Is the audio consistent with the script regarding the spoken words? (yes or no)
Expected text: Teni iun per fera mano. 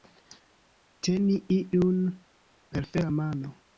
yes